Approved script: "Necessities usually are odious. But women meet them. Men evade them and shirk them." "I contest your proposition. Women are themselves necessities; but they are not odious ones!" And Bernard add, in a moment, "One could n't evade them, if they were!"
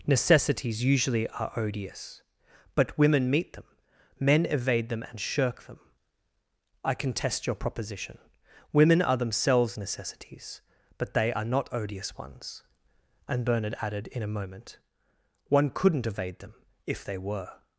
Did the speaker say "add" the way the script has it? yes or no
no